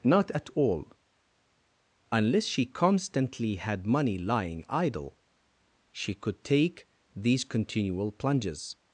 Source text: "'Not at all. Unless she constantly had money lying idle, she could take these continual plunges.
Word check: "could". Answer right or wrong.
right